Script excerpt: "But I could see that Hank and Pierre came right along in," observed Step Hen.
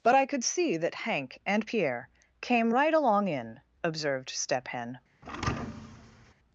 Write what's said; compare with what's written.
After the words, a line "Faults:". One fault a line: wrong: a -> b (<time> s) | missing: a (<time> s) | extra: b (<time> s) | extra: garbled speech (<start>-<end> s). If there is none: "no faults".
"But I could see that Hank and Pierre came right along in," observed Step Hen.
Faults:
no faults